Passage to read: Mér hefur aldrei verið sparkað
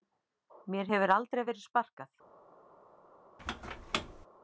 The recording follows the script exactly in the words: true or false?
true